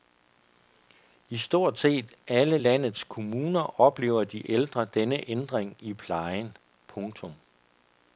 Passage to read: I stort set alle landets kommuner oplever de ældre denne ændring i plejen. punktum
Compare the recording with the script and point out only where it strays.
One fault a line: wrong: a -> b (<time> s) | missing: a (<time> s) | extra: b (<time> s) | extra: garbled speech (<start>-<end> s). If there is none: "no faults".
no faults